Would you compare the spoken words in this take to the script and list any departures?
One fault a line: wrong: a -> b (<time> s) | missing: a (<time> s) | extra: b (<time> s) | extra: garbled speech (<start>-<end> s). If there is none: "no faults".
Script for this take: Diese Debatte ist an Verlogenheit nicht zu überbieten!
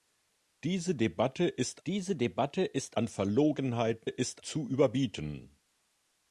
extra: diese Debatte ist (1.9 s)
wrong: nicht -> ist (4.0 s)